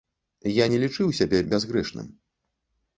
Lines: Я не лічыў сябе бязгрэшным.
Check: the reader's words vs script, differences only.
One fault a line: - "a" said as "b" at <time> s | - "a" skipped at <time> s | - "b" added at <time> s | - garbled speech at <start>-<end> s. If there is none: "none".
none